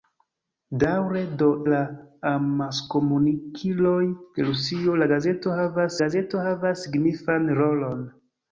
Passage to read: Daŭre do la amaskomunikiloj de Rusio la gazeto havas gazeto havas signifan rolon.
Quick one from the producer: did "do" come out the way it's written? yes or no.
yes